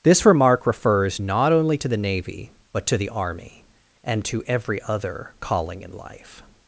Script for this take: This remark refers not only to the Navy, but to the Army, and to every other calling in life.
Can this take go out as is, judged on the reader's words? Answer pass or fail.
pass